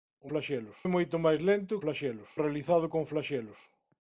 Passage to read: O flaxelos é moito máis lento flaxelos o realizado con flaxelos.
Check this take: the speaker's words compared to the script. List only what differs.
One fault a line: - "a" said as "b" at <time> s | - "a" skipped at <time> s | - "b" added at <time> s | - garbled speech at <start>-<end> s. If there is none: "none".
none